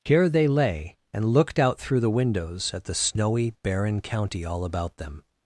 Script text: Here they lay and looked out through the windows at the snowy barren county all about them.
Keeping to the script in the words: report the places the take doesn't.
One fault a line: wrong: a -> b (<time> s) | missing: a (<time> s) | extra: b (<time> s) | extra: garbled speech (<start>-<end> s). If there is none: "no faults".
no faults